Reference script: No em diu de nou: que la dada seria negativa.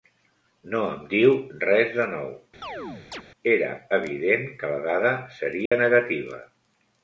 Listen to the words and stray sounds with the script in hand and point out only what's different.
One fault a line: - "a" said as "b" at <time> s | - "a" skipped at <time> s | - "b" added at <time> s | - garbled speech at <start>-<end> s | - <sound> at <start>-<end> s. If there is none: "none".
- "res" added at 1.6 s
- chirp at 2.6-3.2 s
- "era evident" added at 3.6 s
- dropout at 5.7-5.7 s